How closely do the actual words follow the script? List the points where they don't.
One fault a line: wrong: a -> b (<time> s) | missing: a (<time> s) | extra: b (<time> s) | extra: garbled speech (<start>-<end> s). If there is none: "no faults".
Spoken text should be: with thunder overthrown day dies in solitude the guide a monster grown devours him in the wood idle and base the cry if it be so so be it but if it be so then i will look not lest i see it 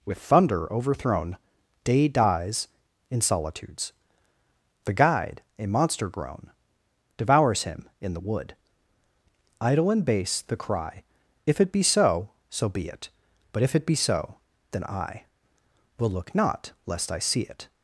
wrong: solitude -> solitudes (3.2 s)